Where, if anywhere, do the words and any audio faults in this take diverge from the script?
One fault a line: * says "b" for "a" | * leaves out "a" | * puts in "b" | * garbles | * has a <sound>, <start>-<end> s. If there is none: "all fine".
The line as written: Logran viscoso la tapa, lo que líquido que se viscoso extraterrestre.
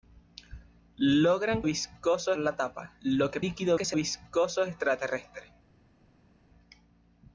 all fine